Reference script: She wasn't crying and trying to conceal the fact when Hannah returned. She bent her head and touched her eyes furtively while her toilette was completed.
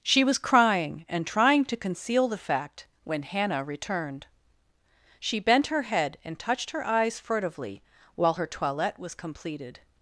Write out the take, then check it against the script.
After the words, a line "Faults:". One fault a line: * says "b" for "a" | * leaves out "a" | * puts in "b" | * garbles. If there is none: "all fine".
She was crying and trying to conceal the fact when Hannah returned. She bent her head and touched her eyes furtively while her toilette was completed.
Faults:
* says "was" for "wasn't"